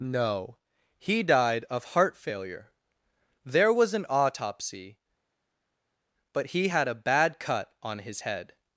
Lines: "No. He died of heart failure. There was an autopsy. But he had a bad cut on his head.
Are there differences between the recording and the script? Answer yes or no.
no